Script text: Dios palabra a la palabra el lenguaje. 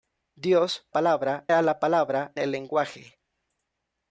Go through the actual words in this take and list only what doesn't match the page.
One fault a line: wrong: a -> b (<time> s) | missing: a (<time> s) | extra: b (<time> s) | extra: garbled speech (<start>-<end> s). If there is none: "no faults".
no faults